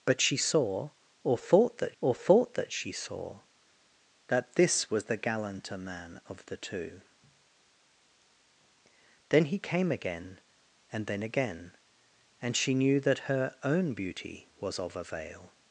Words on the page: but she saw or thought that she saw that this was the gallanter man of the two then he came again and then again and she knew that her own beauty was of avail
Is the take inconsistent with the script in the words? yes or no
yes